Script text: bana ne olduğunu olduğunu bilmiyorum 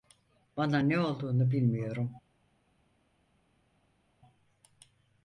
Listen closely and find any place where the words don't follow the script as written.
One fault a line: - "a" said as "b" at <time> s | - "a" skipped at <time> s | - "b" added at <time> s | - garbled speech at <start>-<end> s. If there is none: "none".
- "olduğunu" skipped at 1.5 s